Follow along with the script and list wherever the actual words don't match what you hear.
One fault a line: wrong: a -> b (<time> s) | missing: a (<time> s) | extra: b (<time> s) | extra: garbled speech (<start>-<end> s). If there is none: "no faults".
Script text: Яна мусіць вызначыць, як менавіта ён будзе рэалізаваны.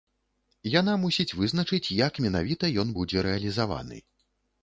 no faults